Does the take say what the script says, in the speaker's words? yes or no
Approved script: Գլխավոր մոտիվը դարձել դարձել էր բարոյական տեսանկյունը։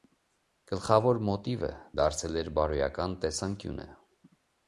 no